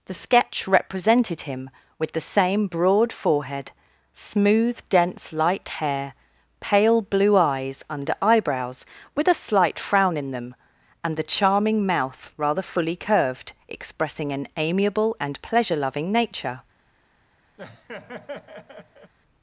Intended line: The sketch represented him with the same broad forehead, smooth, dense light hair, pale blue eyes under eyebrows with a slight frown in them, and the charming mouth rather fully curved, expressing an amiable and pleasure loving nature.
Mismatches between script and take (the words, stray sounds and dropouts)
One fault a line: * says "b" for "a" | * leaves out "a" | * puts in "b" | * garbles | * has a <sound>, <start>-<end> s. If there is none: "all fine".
* has a laugh, 17.6-19.1 s